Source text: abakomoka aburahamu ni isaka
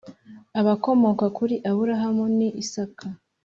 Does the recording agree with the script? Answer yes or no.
no